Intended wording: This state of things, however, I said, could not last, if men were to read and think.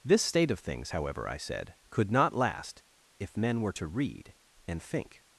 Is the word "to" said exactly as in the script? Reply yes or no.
yes